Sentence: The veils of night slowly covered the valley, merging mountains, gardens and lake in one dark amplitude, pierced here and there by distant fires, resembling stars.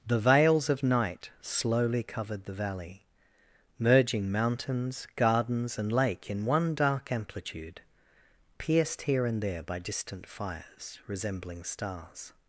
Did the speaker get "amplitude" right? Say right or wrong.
right